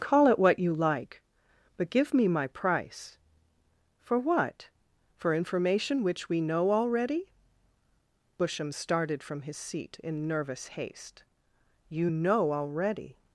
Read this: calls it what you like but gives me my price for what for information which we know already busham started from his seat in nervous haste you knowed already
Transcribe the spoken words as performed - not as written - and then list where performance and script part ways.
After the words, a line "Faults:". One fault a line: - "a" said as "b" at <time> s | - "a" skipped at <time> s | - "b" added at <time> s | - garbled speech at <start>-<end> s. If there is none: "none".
call it what you like but give me my price for what for information which we know already busham started from his seat in nervous haste you know already
Faults:
- "calls" said as "call" at 0.0 s
- "gives" said as "give" at 1.9 s
- "knowed" said as "know" at 12.1 s